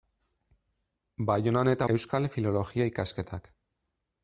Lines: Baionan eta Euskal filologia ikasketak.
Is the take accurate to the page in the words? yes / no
yes